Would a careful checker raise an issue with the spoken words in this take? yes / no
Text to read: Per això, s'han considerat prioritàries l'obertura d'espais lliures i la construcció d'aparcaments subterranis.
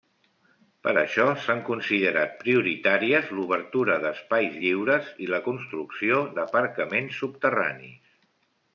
no